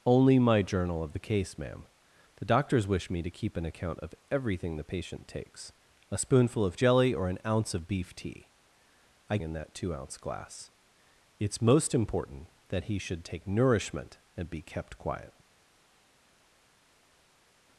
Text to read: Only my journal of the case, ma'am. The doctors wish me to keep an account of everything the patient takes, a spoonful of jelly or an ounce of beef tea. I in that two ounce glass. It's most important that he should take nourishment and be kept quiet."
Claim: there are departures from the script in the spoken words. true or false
false